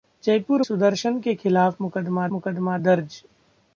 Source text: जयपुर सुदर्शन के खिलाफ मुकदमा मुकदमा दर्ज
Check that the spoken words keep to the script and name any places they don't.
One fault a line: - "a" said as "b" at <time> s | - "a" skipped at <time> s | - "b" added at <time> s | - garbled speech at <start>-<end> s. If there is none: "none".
none